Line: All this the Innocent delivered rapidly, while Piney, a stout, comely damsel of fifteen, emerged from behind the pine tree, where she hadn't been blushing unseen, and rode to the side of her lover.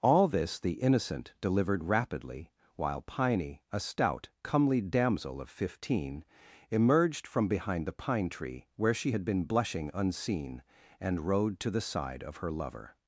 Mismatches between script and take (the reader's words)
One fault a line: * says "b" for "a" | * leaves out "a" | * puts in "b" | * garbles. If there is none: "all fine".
* says "had" for "hadn't"